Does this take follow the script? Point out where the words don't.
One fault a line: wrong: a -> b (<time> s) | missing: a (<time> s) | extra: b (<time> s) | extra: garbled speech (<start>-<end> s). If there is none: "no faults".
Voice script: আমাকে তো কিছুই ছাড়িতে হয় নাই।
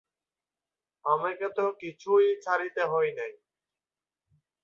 no faults